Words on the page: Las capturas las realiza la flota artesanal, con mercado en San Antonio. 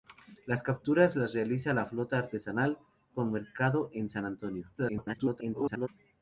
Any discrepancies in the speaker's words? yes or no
yes